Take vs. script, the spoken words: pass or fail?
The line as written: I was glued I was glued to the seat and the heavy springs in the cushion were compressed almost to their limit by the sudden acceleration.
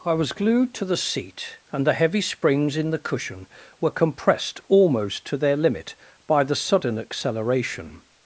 fail